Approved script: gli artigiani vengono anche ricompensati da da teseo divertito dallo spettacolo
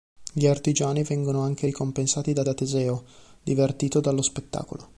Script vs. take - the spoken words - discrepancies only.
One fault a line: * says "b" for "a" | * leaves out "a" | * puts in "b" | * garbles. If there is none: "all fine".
all fine